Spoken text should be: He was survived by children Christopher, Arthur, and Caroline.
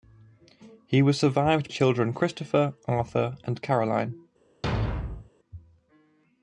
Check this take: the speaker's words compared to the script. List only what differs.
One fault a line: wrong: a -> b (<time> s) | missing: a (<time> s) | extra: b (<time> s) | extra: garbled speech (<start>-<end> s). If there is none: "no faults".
missing: by (1.7 s)